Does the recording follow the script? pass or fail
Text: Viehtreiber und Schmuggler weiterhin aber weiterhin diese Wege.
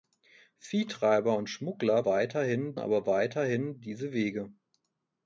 pass